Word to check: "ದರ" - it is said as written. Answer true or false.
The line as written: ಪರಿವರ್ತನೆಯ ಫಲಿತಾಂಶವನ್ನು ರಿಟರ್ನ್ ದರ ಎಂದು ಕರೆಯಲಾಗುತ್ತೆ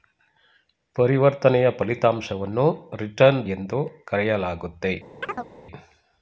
false